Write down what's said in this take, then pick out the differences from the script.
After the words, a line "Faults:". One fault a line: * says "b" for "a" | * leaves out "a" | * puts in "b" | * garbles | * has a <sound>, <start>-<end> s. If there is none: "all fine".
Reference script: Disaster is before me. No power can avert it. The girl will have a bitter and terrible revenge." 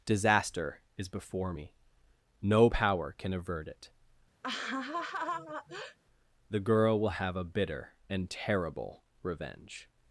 Disaster is before me. No power can avert it. The girl will have a bitter and terrible revenge."
Faults:
* has a laugh, 4.4-6.0 s